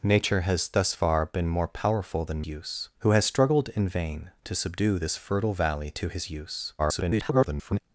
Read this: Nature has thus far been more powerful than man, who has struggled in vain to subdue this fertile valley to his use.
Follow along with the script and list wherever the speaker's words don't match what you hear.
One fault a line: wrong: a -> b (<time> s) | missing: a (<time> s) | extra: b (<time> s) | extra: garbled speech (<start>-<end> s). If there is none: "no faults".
wrong: man -> use (2.5 s)
extra: garbled speech (6.8-7.8 s)